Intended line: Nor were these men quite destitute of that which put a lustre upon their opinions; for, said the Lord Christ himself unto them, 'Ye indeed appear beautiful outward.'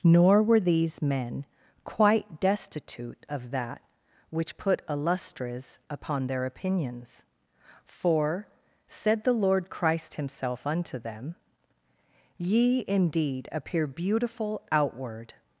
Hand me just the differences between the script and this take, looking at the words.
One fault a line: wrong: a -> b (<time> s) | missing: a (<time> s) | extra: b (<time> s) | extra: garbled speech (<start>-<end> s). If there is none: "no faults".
wrong: lustre -> lustres (5.0 s)